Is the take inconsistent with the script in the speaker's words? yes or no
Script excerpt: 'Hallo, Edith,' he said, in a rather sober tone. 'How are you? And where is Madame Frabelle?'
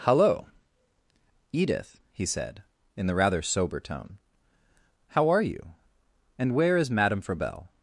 yes